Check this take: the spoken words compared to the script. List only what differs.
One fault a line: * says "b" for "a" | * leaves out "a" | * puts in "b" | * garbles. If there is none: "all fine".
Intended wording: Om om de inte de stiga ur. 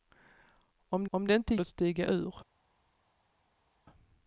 all fine